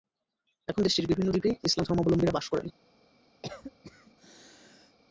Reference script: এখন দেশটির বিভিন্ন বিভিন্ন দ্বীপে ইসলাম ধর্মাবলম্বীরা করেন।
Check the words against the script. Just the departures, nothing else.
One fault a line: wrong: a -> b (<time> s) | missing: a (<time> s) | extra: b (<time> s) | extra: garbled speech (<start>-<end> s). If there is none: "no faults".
missing: বিভিন্ন (1.3 s)
extra: বাস (2.4 s)